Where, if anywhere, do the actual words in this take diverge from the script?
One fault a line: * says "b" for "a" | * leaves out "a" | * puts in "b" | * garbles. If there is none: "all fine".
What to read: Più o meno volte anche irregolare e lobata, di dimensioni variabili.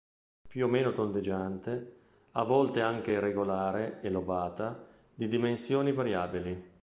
* puts in "tondeggiante a"